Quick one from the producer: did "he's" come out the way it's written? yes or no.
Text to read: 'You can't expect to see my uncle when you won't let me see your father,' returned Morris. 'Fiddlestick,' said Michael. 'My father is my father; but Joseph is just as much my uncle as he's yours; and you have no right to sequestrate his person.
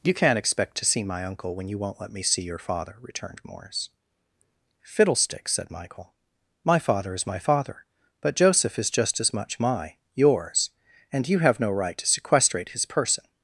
no